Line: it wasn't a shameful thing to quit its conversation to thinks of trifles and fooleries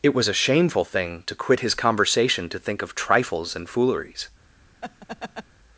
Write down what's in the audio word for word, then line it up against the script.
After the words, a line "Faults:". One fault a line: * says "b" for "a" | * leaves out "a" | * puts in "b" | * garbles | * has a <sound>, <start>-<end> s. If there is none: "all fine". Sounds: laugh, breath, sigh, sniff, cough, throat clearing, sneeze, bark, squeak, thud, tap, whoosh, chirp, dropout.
it was a shameful thing to quit his conversation to think of trifles and fooleries
Faults:
* says "was" for "wasn't"
* says "his" for "its"
* says "think" for "thinks"
* has a laugh, 4.8-5.4 s